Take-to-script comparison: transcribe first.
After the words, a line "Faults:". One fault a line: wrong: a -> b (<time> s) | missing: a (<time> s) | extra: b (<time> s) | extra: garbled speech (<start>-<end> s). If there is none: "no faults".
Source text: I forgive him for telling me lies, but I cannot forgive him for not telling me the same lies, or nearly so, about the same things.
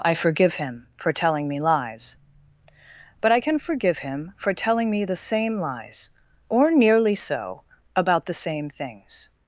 I forgive him for telling me lies, but I can forgive him for telling me the same lies, or nearly so, about the same things.
Faults:
wrong: cannot -> can (3.4 s)
missing: not (4.5 s)